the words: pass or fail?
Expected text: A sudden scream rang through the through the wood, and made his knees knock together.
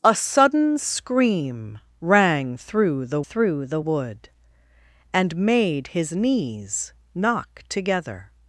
pass